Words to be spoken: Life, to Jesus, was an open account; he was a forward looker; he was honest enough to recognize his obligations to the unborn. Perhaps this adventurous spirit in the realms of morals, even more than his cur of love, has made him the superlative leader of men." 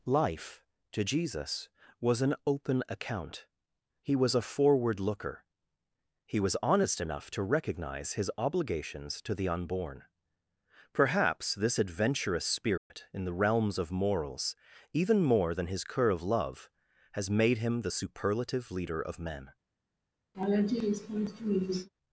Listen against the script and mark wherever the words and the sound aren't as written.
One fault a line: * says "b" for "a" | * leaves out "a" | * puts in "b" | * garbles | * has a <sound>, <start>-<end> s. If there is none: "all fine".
* has a dropout, 12.8-12.9 s
* has a laugh, 20.3-21.9 s